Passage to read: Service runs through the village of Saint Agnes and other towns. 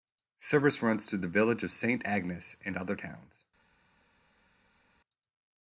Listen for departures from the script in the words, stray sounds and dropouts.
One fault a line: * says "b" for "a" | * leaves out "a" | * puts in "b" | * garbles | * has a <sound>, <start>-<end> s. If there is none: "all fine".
all fine